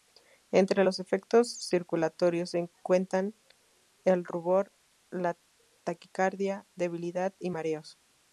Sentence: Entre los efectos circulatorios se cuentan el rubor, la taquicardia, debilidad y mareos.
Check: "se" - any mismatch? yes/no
no